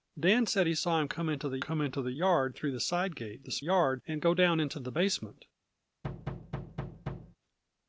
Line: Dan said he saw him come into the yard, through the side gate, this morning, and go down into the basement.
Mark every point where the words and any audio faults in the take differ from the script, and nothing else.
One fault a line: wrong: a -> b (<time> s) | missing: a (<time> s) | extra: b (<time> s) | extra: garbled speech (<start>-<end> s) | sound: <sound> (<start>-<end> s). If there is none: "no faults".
extra: come into the (1.6 s)
wrong: morning -> yard (3.6 s)
sound: thud (6.0-7.4 s)